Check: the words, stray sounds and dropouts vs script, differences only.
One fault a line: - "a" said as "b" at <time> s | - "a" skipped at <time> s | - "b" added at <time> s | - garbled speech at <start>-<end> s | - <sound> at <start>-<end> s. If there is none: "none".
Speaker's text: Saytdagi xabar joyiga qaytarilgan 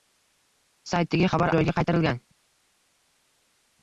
none